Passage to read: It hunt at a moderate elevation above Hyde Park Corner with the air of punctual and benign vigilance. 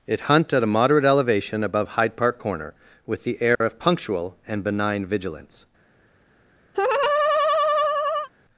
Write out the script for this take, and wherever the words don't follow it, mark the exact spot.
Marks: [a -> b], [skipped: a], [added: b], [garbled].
It hunt at a moderate elevation above Hyde Park Corner with the air of punctual and benign vigilance.